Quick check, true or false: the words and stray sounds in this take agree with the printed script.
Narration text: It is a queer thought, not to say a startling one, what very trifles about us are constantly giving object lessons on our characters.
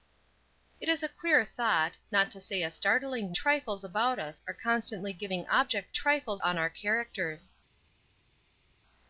false